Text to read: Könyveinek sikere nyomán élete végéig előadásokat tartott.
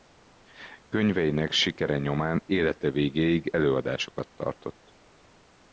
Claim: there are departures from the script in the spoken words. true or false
false